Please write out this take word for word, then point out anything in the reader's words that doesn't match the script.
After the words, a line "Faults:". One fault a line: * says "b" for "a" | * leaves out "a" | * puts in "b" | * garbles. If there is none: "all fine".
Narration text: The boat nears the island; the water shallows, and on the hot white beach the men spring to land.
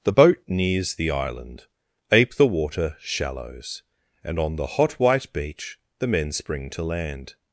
The boat nears the island; ape the water shallows, and on the hot white beach the men spring to land.
Faults:
* puts in "ape"